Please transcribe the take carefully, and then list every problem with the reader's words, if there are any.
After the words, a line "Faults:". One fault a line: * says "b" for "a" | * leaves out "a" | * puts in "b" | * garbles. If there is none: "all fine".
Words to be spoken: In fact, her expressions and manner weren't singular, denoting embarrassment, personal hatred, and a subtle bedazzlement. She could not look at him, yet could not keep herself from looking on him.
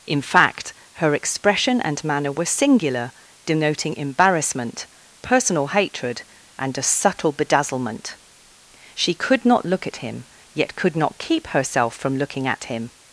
In fact, her expression and manner were singular, denoting embarrassment, personal hatred, and a subtle bedazzlement. She could not look at him, yet could not keep herself from looking at him.
Faults:
* says "expression" for "expressions"
* says "were" for "weren't"
* says "at" for "on"